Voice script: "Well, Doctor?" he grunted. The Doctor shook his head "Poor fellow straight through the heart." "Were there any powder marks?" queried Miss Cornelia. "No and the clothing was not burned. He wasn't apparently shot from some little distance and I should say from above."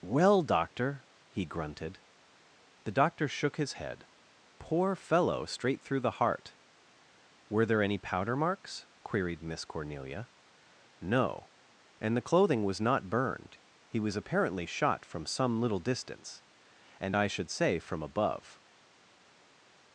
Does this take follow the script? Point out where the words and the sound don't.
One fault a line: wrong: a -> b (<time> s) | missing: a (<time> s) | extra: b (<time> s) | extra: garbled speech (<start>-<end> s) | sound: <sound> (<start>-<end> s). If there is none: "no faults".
wrong: wasn't -> was (14.0 s)